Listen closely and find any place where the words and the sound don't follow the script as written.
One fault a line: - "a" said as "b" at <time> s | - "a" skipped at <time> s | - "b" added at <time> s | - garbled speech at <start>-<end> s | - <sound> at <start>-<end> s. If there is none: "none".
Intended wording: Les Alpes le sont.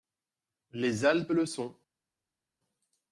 none